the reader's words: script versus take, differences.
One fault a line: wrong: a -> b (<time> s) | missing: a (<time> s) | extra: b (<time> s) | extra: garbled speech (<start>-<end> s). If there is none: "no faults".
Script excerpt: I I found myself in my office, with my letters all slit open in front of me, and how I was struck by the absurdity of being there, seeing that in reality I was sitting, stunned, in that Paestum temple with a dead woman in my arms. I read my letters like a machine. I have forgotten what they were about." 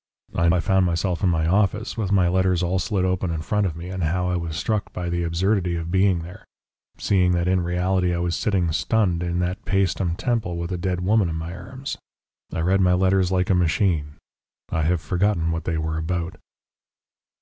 no faults